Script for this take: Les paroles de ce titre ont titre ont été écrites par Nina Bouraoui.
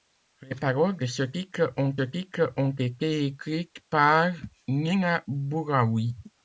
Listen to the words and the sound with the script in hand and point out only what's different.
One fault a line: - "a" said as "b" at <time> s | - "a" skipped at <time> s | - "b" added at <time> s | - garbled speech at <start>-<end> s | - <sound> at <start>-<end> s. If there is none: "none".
none